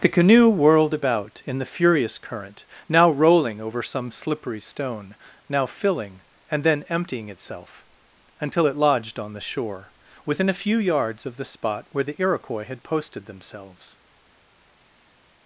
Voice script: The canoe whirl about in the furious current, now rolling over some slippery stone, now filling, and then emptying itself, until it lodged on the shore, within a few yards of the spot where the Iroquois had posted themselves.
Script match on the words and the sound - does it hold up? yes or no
no